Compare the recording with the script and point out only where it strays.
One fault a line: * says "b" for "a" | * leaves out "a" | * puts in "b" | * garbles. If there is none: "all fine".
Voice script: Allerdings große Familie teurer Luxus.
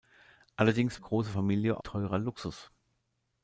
all fine